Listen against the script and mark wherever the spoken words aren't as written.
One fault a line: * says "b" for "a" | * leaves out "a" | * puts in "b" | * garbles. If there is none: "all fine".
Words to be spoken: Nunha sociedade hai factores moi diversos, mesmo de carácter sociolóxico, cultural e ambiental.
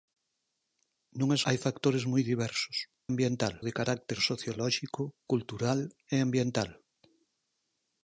* leaves out "sociedade"
* says "ambiental" for "mesmo"